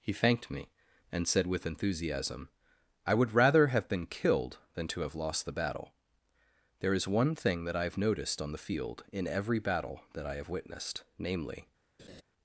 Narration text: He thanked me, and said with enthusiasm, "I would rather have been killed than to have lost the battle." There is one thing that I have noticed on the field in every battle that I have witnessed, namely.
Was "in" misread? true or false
false